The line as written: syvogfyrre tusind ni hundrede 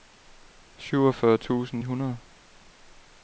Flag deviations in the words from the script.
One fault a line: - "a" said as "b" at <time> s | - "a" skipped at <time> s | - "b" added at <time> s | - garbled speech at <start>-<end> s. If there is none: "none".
- "ni" skipped at 1.8 s